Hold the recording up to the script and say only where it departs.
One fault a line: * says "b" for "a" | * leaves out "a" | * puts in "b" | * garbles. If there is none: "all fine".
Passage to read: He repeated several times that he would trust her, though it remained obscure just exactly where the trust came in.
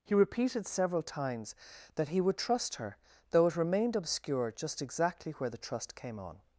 * says "on" for "in"